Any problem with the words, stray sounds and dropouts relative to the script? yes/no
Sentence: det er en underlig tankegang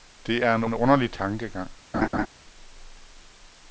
yes